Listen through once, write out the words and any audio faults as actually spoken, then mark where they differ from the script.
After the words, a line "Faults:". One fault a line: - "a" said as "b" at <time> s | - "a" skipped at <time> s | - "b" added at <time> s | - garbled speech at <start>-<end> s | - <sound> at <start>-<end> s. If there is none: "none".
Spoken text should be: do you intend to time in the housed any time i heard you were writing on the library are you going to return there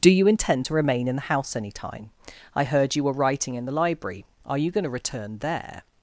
do you intend to remain in the house any time i heard you were writing in the library are you going to return there
Faults:
- "time" said as "remain" at 0.7 s
- "housed" said as "house" at 1.3 s
- "on" said as "in" at 3.5 s